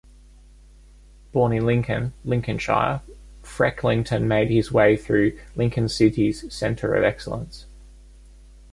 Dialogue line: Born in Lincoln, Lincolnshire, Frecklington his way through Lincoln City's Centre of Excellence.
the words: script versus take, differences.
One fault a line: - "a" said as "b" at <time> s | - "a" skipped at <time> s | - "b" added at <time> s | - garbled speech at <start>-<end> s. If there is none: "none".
- "made" added at 4.3 s